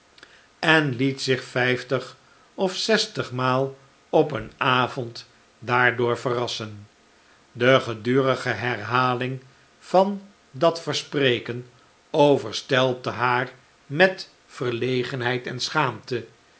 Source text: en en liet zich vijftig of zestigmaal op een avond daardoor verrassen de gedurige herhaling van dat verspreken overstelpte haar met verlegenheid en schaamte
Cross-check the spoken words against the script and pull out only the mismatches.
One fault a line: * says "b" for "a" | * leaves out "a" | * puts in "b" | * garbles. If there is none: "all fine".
* leaves out "en"